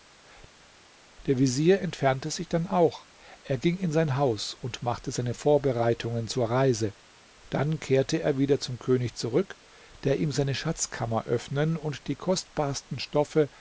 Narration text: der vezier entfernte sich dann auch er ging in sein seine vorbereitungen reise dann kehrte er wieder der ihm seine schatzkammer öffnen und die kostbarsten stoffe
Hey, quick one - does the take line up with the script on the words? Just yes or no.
no